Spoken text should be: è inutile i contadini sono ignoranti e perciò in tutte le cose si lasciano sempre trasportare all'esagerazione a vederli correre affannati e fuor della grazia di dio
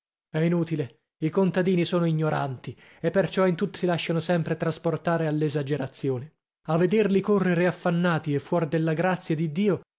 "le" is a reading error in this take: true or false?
true